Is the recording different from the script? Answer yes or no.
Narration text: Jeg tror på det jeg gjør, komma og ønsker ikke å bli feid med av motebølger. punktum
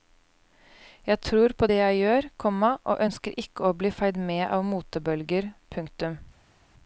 no